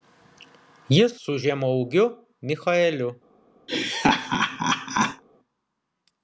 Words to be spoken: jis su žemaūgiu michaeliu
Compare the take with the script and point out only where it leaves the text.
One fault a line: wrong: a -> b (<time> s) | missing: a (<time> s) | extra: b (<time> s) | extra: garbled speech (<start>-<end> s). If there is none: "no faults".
no faults